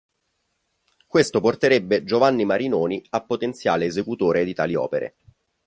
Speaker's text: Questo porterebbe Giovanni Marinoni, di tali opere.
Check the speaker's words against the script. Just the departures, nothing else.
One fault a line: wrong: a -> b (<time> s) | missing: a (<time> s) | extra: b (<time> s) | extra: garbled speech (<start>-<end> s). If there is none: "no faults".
extra: a potenziale esecutore (3.1 s)